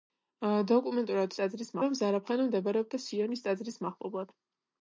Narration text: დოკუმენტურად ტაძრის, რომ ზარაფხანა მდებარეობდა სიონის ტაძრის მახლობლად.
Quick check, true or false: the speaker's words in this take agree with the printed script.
true